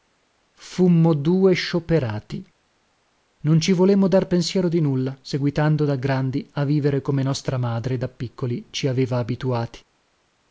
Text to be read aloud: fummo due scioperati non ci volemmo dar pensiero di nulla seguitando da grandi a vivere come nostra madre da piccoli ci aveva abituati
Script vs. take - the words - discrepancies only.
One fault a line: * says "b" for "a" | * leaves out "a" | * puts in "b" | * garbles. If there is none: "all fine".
all fine